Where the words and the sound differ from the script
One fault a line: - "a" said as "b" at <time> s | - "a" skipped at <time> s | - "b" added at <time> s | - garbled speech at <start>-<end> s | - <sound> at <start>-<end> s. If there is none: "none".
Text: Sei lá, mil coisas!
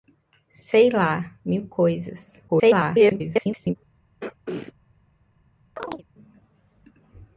- garbled speech at 2.5-3.8 s
- throat clearing at 4.2-4.7 s
- chirp at 5.8-6.1 s